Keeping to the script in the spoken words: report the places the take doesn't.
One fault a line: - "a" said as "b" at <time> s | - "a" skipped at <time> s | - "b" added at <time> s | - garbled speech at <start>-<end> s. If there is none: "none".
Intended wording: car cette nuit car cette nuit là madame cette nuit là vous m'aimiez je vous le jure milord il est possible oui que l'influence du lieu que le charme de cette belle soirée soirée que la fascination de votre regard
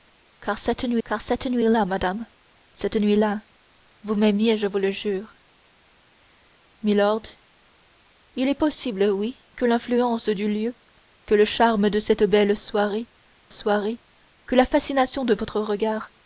none